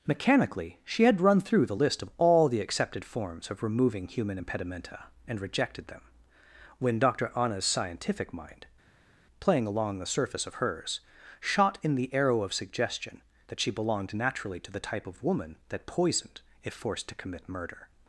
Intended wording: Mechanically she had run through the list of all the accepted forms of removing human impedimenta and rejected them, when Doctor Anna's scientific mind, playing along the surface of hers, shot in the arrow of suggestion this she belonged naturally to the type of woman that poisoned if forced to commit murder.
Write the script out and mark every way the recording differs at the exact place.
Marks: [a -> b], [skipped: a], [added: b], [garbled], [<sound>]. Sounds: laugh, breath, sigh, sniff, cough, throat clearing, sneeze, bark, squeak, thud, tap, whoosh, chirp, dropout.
Mechanically she had run through the list of all the accepted forms of removing human impedimenta and rejected them, when Doctor Anna's scientific mind, playing along the surface of hers, shot in the arrow of suggestion [this -> that] she belonged naturally to the type of woman that poisoned if forced to commit murder.